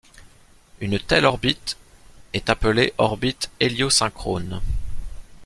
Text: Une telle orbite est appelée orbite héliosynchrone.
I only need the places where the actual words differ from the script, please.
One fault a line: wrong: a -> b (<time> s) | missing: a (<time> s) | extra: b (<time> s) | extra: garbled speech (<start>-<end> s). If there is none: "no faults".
no faults